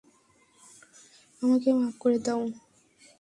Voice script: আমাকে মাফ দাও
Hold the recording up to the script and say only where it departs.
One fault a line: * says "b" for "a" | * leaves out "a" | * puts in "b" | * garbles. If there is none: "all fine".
* puts in "করে"